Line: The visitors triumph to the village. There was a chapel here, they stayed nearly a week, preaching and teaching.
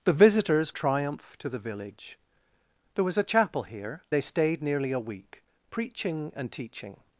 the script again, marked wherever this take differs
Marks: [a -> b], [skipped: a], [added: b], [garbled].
The visitors triumph to the village. There was a chapel here, they stayed nearly a week, preaching and teaching.